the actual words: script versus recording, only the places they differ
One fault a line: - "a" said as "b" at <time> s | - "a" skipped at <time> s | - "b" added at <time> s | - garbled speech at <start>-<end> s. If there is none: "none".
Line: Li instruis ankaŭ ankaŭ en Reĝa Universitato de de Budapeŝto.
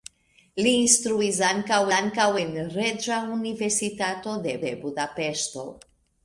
none